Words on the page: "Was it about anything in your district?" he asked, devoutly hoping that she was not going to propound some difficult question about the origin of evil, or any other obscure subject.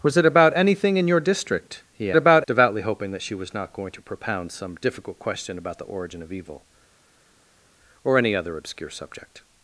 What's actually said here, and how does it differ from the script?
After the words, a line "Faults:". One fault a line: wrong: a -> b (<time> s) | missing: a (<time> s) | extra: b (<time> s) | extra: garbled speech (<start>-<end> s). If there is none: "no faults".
"Was it about anything in your district?" he about, devoutly hoping that she was not going to propound some difficult question about the origin of evil, or any other obscure subject.
Faults:
wrong: asked -> about (2.2 s)